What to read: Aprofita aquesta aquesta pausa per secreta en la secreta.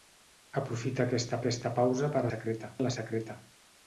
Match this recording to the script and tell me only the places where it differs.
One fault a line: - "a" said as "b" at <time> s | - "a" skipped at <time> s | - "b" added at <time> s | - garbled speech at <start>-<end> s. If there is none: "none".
none